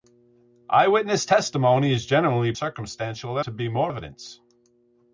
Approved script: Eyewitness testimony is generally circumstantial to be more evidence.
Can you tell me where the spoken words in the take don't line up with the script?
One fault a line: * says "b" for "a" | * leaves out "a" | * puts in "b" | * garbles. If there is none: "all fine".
all fine